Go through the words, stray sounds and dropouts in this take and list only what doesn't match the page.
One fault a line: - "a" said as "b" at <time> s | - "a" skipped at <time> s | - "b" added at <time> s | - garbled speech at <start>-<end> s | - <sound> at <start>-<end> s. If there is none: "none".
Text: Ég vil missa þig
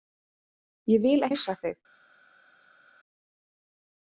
none